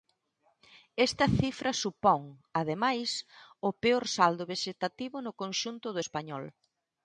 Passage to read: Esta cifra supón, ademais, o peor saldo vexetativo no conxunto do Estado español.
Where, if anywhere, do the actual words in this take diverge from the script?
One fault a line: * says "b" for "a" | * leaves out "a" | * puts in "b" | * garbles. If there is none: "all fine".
* leaves out "Estado"